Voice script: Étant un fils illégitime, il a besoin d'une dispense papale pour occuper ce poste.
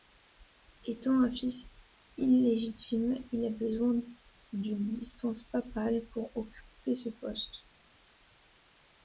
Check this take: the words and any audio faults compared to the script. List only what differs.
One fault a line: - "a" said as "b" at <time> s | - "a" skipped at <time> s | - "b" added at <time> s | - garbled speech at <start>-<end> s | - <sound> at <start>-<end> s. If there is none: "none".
none